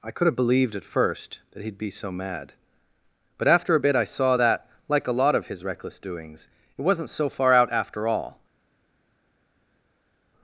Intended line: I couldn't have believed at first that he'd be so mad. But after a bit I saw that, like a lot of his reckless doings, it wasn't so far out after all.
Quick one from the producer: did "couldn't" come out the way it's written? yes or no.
no